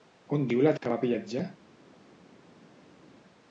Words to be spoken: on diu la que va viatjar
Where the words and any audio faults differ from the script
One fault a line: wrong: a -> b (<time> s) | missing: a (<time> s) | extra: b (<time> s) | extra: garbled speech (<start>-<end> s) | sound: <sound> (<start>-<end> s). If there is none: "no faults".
no faults